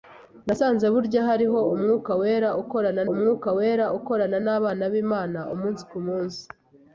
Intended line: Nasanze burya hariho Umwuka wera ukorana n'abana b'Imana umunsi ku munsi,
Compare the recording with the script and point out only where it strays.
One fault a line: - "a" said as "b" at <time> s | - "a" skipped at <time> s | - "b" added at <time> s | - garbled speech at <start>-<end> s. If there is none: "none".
- "Umwuka wera ukorana" added at 3.1 s